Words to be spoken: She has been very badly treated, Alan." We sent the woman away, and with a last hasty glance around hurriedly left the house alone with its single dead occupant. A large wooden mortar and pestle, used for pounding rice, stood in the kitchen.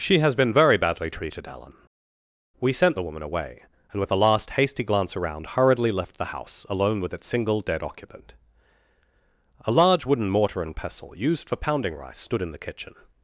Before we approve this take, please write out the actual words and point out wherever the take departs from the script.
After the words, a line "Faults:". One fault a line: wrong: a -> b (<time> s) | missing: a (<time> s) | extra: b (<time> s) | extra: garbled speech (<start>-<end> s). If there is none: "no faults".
She has been very badly treated, Alan." We sent the woman away, and with a last hasty glance around hurriedly left the house alone with its single dead occupant. A large wooden mortar and pestle, used for pounding rice, stood in the kitchen.
Faults:
no faults